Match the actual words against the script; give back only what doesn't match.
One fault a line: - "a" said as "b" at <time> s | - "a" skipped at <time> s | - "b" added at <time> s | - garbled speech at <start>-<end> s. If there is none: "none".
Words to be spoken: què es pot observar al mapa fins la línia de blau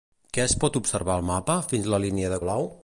none